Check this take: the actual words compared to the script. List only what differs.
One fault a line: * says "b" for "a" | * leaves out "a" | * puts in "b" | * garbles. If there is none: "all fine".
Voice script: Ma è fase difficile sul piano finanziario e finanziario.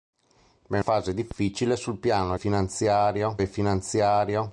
all fine